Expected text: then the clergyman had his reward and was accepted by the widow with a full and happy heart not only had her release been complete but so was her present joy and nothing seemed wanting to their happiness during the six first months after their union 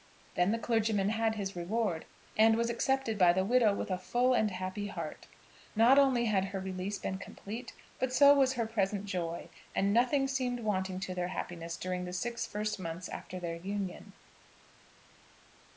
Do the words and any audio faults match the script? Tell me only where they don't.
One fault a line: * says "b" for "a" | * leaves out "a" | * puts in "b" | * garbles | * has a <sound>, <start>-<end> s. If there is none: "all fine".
all fine